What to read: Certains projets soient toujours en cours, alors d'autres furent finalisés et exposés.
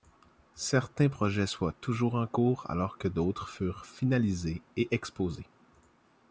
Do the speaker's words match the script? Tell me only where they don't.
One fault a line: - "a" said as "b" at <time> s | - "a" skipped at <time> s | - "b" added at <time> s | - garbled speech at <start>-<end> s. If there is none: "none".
- "que" added at 3.0 s